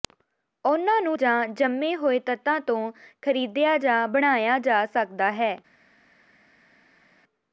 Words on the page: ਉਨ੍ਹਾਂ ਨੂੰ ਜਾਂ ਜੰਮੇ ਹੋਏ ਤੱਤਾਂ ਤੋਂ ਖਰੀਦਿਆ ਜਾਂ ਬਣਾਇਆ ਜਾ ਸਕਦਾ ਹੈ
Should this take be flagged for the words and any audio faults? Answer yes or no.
no